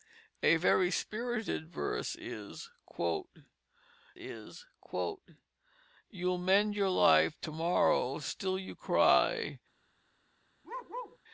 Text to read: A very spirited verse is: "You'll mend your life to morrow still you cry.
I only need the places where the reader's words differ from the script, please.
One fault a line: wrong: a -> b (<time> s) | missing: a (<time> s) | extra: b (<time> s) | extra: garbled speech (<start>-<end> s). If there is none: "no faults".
extra: is (4.1 s)